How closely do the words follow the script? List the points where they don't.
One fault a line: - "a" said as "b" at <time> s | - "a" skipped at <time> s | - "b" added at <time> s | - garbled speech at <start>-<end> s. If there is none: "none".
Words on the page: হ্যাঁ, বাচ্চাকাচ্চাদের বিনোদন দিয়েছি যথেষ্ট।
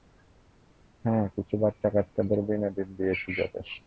- "কিছু" added at 1.4 s